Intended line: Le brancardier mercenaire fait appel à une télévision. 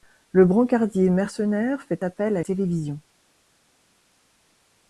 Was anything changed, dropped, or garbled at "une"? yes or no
yes